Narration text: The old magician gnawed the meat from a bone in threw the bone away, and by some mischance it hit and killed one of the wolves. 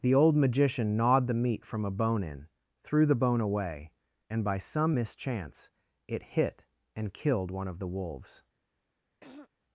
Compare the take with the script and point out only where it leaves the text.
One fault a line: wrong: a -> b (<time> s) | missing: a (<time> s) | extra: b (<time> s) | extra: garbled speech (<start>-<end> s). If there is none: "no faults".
no faults